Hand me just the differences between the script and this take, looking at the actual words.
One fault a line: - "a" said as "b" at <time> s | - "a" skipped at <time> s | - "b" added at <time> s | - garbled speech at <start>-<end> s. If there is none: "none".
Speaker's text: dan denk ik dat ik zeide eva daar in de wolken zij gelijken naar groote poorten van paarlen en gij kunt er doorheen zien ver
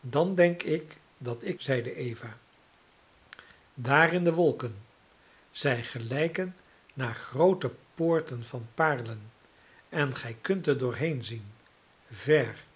none